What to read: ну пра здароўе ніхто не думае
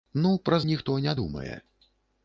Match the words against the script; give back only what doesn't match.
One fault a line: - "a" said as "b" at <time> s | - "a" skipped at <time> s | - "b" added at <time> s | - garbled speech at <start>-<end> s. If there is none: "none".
- "здароўе" skipped at 0.6 s